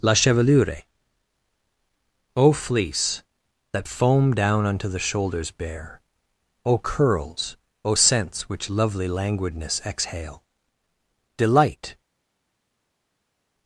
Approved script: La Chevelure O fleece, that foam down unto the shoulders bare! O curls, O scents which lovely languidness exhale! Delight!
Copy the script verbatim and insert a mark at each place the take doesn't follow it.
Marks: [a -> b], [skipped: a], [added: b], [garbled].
La Chevelure O fleece, that foam down unto the shoulders bare! O curls, O scents which lovely languidness exhale! Delight!